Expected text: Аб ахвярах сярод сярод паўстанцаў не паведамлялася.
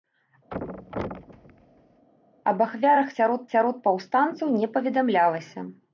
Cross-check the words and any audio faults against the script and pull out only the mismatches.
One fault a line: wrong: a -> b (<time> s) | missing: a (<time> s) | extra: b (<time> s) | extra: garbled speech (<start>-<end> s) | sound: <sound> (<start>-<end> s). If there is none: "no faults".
sound: thud (0.5-2.1 s)